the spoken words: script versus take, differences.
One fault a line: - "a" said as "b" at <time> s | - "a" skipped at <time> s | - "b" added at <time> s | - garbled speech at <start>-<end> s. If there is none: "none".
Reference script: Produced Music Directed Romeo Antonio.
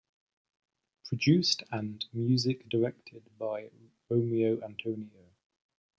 - "and" added at 1.7 s
- "by" added at 3.4 s